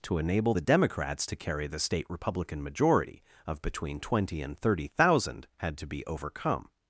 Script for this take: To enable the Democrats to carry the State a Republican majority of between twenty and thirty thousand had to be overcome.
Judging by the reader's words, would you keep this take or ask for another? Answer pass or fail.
fail